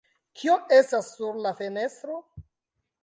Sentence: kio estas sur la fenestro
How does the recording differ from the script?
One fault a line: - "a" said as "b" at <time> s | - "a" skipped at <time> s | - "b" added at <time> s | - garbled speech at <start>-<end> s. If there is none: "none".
none